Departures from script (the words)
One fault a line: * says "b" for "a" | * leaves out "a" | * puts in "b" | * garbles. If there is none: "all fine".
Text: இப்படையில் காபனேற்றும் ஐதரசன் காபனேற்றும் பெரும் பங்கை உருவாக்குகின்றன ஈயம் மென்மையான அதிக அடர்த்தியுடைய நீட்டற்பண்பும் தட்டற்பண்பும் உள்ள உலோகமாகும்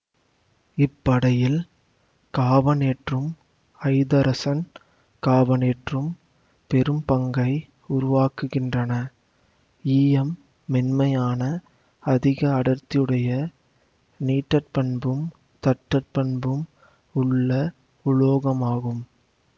all fine